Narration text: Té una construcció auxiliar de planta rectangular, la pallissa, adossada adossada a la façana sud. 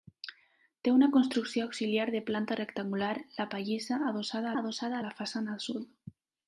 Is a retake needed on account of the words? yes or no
no